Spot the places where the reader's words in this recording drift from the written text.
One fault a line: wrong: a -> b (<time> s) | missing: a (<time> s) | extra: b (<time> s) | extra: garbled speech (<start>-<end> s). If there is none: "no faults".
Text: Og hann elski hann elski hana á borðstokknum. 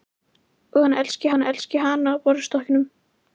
no faults